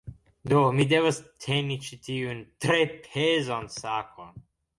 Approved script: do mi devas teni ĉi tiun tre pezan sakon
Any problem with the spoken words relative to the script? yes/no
no